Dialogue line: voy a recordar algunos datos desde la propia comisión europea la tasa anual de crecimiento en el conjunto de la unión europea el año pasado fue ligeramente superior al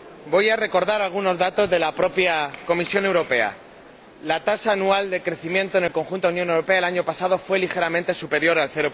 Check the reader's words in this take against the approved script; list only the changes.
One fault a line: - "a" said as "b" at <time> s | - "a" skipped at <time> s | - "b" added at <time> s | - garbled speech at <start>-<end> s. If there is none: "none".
- "desde" said as "de" at 1.7 s